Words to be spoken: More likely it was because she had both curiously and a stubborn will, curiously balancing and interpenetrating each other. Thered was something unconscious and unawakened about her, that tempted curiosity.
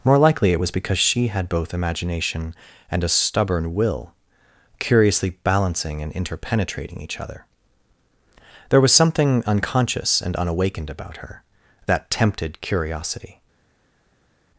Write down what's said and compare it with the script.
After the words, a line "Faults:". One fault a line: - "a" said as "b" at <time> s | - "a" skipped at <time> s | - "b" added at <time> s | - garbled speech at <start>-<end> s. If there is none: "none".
More likely it was because she had both imagination and a stubborn will, curiously balancing and interpenetrating each other. There was something unconscious and unawakened about her, that tempted curiosity.
Faults:
- "curiously" said as "imagination" at 1.7 s
- "Thered" said as "There" at 8.7 s